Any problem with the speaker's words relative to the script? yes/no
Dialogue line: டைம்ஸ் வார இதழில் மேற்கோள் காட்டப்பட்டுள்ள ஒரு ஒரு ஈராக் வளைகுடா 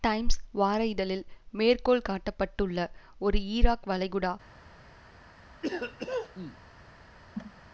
yes